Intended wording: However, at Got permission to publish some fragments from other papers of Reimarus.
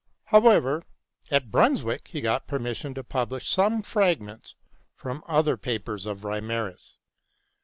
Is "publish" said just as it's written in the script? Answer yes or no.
yes